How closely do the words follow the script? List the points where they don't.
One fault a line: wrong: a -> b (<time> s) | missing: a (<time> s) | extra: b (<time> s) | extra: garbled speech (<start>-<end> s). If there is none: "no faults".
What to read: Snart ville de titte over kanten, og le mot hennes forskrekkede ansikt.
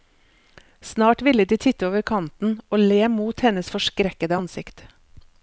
no faults